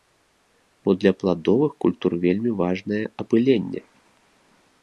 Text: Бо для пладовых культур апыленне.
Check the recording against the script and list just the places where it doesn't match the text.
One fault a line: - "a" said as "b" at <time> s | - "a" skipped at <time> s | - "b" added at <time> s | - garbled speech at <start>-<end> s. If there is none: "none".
- "вельмі важнае" added at 2.2 s